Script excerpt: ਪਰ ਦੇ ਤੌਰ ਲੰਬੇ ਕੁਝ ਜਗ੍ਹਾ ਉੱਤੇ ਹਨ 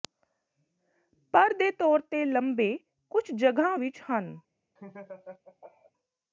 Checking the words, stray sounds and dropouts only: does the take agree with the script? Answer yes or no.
no